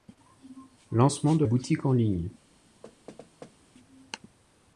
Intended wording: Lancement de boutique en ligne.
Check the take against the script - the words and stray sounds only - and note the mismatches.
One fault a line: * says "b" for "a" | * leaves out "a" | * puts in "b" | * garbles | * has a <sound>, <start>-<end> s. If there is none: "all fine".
* has a thud, 2.8-3.6 s